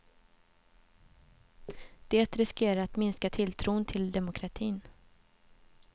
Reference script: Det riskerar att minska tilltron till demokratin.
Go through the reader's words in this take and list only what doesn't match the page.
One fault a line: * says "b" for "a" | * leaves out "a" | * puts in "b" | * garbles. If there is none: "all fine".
all fine